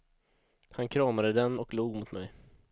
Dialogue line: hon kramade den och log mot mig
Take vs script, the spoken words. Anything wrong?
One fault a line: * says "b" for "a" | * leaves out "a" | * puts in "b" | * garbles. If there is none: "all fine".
* says "han" for "hon"